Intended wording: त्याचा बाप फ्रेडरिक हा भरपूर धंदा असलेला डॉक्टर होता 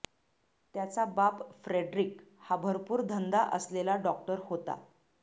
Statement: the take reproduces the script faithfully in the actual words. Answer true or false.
true